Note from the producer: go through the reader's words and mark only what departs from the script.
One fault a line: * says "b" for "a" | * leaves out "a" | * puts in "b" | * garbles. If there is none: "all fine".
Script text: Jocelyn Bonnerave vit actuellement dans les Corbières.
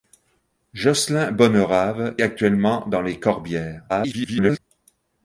* leaves out "vit"
* garbles